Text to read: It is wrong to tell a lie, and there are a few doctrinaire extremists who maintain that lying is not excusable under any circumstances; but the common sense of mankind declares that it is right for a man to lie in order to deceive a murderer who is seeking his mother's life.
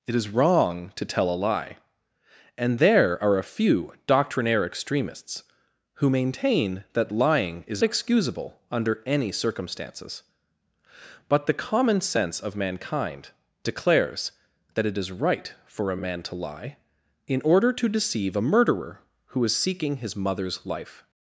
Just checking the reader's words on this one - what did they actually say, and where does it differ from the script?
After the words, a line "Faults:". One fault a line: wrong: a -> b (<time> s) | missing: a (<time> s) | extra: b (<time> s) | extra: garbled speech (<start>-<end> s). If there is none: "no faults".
It is wrong to tell a lie, and there are a few doctrinaire extremists who maintain that lying is excusable under any circumstances; but the common sense of mankind declares that it is right for a a man to lie in order to deceive a murderer who is seeking his mother's life.
Faults:
missing: not (7.8 s)
extra: a (16.0 s)